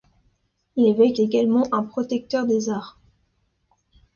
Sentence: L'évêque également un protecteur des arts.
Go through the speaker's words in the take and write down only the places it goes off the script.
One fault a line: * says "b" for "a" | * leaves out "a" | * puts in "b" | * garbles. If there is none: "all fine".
all fine